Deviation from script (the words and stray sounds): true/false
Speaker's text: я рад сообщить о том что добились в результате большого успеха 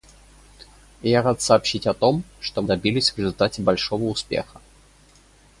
false